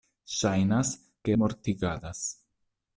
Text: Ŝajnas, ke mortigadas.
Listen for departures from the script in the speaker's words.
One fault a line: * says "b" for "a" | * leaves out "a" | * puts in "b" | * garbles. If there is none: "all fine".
all fine